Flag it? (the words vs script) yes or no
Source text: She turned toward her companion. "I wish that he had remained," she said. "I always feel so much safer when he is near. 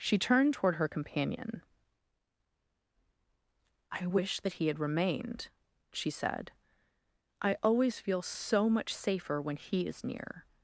no